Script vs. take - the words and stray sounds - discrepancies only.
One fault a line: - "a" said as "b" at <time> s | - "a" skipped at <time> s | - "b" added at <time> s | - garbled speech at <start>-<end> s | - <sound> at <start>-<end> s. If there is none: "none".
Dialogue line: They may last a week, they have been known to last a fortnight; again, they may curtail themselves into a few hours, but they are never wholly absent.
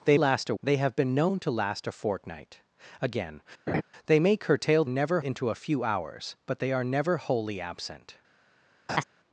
- "may" skipped at 0.2 s
- "week" skipped at 0.5 s
- laugh at 3.7-3.8 s
- "themselves" said as "never" at 4.9 s
- laugh at 8.9-9.0 s